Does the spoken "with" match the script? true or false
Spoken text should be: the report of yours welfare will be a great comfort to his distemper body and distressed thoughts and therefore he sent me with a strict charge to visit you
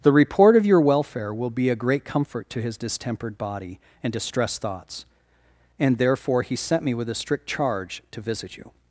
true